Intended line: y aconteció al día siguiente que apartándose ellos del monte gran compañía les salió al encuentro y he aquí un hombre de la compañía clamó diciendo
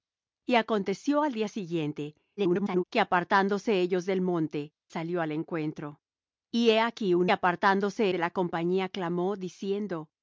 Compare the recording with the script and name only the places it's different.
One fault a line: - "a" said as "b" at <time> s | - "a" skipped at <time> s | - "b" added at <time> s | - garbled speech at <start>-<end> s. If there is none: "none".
- garbled speech at 2.4-2.8 s
- "gran compañía les" skipped at 4.7 s
- "hombre" said as "apartándose" at 7.3 s